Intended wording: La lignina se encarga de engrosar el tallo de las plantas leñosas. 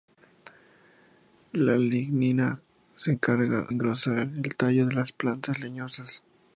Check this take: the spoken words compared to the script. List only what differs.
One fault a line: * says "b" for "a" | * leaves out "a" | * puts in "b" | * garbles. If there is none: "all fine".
* leaves out "de"